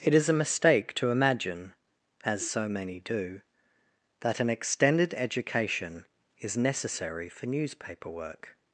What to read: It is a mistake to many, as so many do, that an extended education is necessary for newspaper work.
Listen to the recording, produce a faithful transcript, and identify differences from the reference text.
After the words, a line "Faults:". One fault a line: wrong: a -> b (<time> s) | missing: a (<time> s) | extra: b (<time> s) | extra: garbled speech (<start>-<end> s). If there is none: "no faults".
It is a mistake to imagine, as so many do, that an extended education is necessary for newspaper work.
Faults:
wrong: many -> imagine (1.1 s)